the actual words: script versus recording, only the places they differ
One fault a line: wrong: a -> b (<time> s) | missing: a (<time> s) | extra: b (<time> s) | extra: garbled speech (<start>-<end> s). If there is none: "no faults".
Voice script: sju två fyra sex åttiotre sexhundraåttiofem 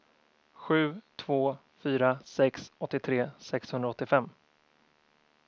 no faults